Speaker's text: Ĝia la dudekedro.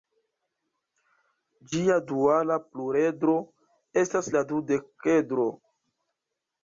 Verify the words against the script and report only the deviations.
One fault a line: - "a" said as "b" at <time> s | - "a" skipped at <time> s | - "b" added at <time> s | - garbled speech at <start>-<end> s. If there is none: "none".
- "duala pluredro estas" added at 2.1 s